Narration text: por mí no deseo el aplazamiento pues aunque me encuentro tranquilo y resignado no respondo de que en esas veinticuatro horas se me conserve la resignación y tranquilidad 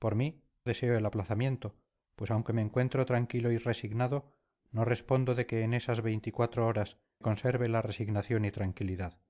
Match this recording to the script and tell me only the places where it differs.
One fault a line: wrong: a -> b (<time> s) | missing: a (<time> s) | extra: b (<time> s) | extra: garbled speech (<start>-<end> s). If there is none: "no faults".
missing: no (0.4 s)
missing: se me (7.0 s)